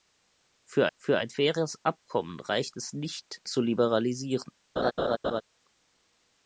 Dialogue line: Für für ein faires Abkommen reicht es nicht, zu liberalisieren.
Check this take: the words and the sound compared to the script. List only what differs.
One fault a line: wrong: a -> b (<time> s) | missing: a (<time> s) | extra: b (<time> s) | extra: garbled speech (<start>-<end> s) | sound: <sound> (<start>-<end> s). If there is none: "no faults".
sound: laugh (4.8-5.4 s)